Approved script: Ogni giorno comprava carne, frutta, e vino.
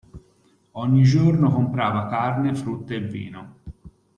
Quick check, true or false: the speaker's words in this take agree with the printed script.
true